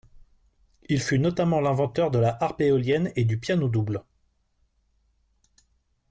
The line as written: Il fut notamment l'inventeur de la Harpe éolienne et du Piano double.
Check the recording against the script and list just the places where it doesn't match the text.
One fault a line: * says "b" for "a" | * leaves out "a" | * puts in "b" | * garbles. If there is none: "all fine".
all fine